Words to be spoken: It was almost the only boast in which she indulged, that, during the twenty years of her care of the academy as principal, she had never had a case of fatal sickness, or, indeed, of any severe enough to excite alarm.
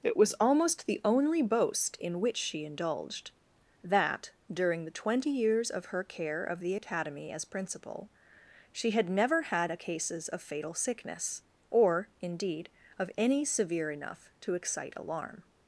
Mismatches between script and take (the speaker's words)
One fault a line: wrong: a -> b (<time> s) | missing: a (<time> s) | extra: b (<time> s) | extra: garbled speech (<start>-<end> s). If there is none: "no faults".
wrong: case -> cases (9.8 s)